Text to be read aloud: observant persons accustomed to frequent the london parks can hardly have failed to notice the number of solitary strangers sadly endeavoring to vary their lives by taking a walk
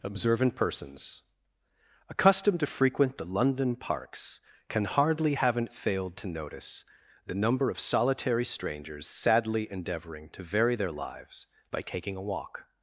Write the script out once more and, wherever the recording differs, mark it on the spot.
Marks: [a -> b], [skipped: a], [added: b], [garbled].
observant persons accustomed to frequent the london parks can hardly [have -> haven't] failed to notice the number of solitary strangers sadly endeavoring to vary their lives by taking a walk